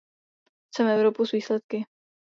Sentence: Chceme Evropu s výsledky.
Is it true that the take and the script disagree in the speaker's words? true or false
false